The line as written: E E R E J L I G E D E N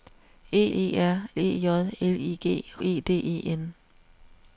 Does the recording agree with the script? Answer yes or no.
yes